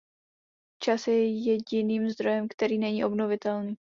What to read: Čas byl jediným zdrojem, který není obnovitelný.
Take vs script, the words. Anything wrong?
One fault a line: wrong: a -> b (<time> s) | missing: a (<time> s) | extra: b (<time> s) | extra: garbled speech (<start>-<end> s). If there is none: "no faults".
wrong: byl -> je (1.1 s)